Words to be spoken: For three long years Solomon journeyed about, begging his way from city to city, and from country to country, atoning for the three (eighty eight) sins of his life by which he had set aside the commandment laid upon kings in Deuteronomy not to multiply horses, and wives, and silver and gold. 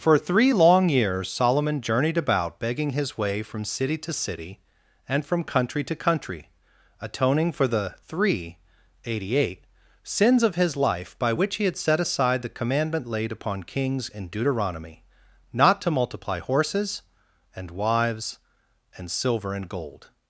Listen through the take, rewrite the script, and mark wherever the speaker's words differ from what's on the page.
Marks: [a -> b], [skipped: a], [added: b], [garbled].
For three long years Solomon journeyed about, begging his way from city to city, and from country to country, atoning for the three (eighty eight) sins of his life by which he had set aside the commandment laid upon kings in Deuteronomy not to multiply horses, and wives, and silver and gold.